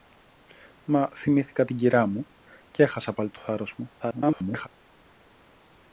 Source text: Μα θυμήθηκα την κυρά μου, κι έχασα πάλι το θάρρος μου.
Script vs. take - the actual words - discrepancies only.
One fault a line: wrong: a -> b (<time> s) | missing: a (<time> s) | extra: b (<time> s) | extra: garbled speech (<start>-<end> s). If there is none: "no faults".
extra: garbled speech (4.0-4.7 s)